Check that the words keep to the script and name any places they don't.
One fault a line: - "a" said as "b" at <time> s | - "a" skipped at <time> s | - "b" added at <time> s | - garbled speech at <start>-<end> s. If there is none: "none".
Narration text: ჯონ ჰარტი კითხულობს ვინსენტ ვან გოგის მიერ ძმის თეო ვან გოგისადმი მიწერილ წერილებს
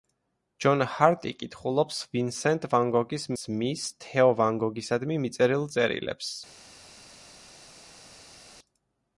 - "მიერ" skipped at 3.3 s